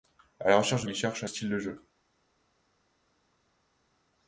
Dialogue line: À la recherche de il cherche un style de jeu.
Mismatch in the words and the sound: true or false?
false